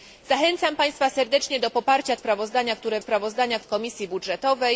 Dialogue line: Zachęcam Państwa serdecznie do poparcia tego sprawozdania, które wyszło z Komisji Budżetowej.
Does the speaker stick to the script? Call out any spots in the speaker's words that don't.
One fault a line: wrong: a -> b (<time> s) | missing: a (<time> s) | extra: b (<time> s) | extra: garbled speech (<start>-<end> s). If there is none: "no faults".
missing: tego (2.2 s)
wrong: wyszło -> sprawozdania (3.0 s)